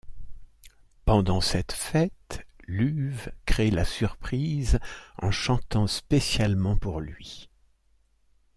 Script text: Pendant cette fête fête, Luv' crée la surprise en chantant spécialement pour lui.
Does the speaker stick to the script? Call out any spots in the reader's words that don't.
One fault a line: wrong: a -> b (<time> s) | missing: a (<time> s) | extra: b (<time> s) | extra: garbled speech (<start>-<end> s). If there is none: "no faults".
missing: fête (2.5 s)